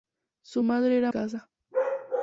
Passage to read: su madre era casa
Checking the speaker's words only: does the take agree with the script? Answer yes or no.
yes